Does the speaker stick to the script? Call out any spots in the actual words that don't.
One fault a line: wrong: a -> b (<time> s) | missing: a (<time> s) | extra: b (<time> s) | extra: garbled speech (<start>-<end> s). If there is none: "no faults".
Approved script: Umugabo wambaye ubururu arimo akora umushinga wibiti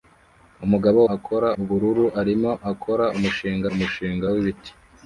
wrong: wambaye -> akora (1.1 s)
extra: umushinga (3.7 s)